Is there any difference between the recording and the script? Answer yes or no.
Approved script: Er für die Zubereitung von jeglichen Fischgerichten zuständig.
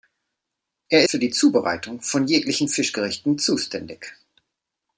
no